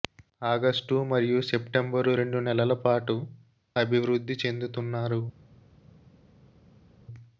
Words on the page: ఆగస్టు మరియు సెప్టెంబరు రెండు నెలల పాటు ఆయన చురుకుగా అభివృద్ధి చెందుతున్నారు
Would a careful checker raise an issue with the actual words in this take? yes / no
yes